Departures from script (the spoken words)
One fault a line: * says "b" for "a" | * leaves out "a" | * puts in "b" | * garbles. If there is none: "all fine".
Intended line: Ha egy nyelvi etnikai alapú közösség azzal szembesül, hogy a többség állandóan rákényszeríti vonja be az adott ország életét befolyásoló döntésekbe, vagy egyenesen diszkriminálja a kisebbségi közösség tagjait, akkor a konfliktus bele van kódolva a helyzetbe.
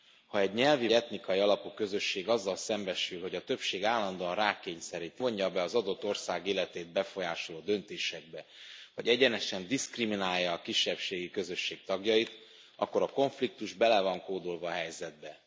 all fine